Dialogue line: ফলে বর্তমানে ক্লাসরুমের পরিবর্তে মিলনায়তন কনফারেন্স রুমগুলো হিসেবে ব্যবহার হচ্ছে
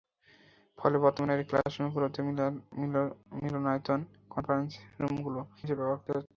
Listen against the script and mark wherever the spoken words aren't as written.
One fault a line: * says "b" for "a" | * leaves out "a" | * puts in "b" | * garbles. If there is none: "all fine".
all fine